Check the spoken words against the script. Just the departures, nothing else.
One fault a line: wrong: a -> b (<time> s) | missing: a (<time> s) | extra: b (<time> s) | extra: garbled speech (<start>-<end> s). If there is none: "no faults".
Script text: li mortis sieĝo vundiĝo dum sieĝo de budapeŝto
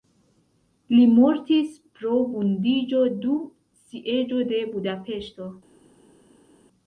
wrong: sieĝo -> pro (2.0 s)